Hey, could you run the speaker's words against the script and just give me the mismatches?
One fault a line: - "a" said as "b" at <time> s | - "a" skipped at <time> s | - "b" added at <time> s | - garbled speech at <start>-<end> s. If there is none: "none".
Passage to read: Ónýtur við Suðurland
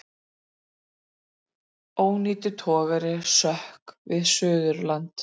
- "togari sökk" added at 2.6 s